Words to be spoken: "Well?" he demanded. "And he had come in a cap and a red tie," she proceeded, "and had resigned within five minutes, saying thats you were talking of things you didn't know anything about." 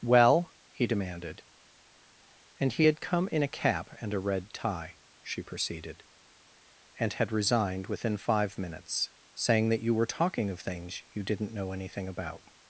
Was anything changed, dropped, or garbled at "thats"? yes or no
yes